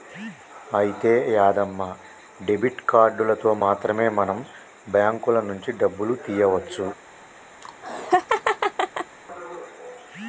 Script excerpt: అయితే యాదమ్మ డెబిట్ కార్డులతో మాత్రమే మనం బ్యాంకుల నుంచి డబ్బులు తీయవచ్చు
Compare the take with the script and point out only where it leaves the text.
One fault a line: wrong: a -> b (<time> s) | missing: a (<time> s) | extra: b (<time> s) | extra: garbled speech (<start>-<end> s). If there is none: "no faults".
no faults